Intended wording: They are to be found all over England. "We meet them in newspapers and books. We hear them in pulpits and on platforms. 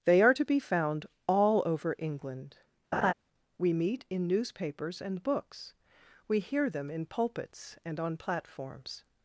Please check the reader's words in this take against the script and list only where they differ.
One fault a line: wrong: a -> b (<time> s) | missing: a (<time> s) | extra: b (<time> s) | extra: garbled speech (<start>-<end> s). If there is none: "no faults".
missing: them (4.0 s)